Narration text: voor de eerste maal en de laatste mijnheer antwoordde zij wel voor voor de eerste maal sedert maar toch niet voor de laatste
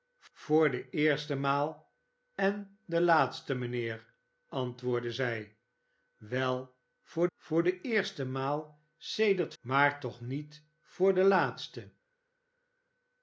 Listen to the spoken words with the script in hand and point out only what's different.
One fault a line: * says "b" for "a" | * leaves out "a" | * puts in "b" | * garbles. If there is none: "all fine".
all fine